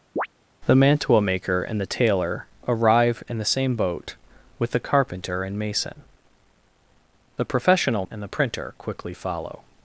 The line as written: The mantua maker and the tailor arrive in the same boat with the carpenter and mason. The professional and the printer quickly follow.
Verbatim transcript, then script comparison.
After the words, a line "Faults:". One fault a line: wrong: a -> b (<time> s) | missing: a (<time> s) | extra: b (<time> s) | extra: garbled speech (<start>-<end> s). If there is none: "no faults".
The mantua maker and the tailor arrive in the same boat with the carpenter and mason. The professional and the printer quickly follow.
Faults:
no faults